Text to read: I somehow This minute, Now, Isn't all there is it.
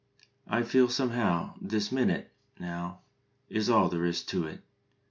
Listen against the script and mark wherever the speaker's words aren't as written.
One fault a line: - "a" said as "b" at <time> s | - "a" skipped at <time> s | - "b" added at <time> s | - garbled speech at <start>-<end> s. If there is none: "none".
- "feel" added at 0.6 s
- "Isn't" said as "Is" at 3.5 s
- "to" added at 4.2 s